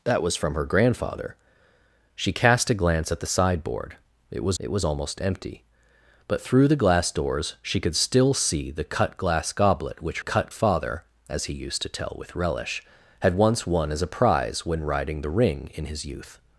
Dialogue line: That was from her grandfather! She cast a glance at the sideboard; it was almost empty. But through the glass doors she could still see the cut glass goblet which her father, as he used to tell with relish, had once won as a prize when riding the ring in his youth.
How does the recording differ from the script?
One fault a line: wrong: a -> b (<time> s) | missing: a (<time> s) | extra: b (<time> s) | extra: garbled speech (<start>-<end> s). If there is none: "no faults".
extra: it was (4.6 s)
wrong: her -> cut (10.2 s)